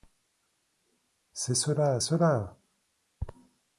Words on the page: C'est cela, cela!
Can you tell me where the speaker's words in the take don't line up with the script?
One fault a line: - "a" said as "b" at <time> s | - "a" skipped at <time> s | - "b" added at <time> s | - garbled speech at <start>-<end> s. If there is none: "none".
none